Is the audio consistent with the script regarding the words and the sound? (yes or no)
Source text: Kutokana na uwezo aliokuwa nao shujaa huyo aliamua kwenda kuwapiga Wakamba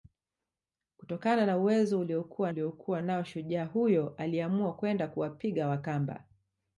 no